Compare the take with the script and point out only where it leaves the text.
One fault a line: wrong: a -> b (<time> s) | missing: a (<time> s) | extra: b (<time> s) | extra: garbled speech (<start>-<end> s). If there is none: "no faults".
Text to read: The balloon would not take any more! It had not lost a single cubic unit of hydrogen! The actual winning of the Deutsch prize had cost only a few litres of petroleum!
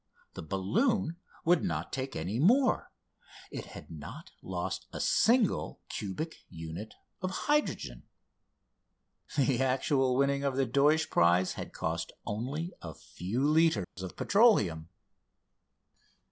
no faults